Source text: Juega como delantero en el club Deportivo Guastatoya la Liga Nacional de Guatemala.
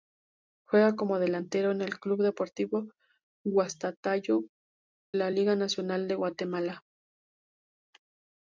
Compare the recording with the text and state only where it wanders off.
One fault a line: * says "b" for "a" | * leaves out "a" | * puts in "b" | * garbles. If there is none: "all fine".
all fine